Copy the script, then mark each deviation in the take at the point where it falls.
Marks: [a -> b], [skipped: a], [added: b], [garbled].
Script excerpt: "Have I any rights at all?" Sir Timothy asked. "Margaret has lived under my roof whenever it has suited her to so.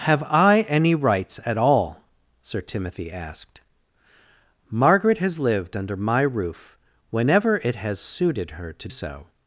"Have I any rights at all?" Sir Timothy asked. "Margaret has lived under my roof whenever it has suited her to so.